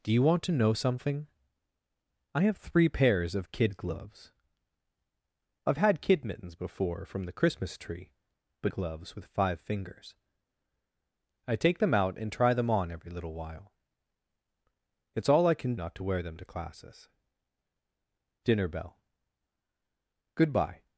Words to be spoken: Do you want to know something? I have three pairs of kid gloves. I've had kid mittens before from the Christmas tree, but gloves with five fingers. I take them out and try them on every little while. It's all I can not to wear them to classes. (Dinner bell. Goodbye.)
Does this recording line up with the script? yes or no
yes